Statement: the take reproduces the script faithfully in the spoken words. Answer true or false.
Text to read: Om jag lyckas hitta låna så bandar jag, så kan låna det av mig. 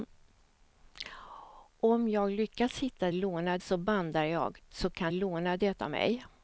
true